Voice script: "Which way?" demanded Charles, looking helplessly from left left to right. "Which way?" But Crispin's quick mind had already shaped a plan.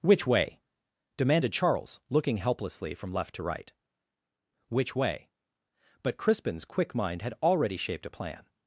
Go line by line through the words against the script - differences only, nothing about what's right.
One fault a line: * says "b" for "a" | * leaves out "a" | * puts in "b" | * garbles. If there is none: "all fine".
* leaves out "left"